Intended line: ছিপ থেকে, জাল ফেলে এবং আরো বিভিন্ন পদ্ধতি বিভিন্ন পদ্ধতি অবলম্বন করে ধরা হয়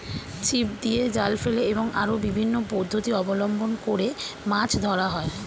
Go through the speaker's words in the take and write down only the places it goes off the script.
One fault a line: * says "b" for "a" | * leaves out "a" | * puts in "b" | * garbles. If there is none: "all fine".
* says "দিয়ে" for "থেকে"
* leaves out "বিভিন্ন পদ্ধতি"
* puts in "মাছ"